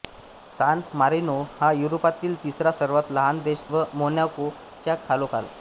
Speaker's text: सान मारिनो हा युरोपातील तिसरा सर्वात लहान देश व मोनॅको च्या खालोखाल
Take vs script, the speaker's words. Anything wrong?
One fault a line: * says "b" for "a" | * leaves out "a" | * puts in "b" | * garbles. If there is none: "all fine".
all fine